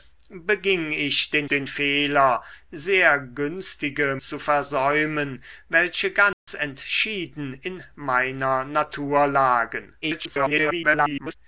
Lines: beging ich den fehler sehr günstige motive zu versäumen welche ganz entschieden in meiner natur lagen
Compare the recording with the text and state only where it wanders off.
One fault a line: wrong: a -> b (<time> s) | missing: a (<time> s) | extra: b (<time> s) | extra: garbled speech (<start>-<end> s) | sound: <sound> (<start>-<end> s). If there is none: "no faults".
extra: den (1.5 s)
missing: motive (4.2 s)
sound: dropout (6.3-6.5 s)
extra: garbled speech (10.0-11.3 s)